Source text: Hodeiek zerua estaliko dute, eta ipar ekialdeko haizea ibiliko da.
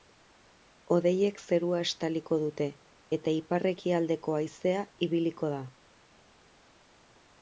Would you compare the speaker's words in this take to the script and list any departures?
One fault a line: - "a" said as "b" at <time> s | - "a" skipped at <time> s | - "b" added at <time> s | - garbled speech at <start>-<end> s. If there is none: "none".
none